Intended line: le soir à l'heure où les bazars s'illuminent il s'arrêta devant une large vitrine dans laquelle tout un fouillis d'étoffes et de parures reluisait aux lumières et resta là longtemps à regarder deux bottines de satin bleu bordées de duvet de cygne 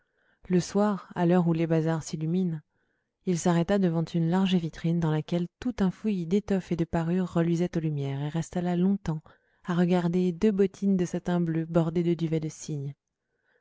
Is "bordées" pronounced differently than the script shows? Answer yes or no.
no